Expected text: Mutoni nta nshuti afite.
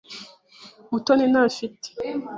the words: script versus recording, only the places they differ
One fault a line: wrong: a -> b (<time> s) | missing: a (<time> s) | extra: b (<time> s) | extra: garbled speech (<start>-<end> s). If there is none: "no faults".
missing: nshuti (1.4 s)